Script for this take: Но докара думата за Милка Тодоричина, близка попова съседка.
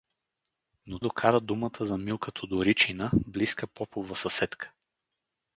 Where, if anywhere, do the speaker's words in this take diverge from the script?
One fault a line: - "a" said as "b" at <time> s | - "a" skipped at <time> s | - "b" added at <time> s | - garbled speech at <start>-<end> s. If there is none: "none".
none